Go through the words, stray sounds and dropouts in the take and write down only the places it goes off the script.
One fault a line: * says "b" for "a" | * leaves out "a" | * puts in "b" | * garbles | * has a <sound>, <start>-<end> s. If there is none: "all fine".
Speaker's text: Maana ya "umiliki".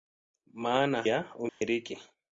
* has a dropout, 1.5-1.6 s